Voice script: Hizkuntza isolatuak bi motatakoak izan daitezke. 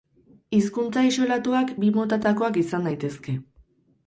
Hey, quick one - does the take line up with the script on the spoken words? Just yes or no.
yes